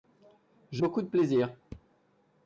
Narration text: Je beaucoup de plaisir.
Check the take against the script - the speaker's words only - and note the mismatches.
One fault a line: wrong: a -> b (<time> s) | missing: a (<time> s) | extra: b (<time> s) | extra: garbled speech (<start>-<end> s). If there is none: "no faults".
no faults